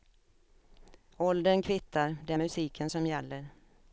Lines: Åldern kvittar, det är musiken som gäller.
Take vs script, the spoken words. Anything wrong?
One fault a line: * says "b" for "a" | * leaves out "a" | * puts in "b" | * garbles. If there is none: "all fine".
all fine